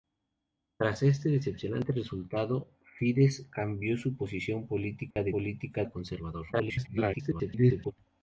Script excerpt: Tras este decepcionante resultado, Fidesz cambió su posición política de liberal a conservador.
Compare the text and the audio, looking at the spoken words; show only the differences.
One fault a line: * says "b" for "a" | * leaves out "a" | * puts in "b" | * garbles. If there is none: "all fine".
* says "política" for "liberal"
* garbles